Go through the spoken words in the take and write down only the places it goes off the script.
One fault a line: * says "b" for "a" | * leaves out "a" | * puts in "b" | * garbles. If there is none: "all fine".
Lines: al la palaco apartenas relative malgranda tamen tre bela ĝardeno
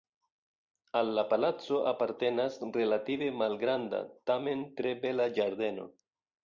all fine